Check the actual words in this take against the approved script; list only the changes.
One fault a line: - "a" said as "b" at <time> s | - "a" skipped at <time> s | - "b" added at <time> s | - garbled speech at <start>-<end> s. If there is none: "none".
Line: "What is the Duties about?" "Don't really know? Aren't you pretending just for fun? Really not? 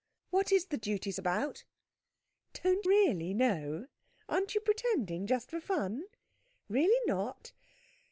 none